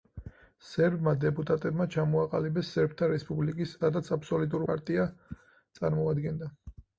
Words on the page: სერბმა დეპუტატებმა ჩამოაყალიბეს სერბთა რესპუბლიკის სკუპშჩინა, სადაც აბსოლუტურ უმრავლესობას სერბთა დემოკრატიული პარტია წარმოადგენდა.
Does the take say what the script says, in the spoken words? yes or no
no